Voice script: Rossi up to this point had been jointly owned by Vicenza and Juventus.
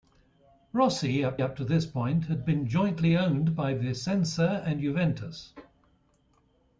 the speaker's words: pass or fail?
fail